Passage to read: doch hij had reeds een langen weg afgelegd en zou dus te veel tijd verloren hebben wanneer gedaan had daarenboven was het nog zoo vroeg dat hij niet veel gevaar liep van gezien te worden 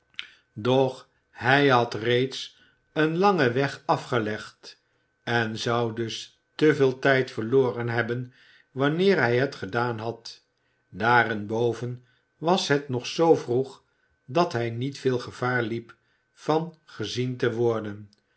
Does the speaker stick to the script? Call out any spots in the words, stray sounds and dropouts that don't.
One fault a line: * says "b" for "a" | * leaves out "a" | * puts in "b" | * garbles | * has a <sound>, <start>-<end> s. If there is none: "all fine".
* puts in "hij het"